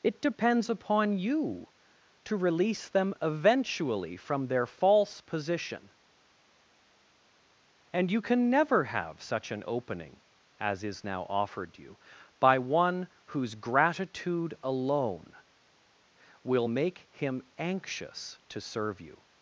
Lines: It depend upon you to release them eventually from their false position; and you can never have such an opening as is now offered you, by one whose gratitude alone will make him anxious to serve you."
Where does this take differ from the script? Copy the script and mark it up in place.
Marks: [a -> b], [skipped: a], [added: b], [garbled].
It [depend -> depends] upon you to release them eventually from their false position; and you can never have such an opening as is now offered you, by one whose gratitude alone will make him anxious to serve you."